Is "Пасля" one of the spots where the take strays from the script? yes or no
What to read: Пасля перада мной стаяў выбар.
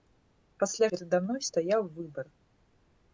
no